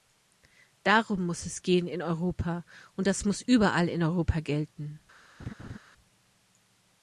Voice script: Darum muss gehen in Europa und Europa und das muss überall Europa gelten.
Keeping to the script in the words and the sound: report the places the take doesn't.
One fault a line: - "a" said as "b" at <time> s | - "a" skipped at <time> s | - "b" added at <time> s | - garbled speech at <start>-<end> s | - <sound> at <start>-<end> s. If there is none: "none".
- "es" added at 1.4 s
- "Europa und" skipped at 3.1 s
- "in" added at 3.9 s
- laugh at 5.4-5.8 s